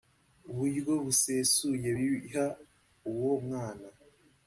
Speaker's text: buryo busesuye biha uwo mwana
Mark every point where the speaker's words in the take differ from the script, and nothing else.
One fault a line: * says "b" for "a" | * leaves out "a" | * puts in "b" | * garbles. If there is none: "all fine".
all fine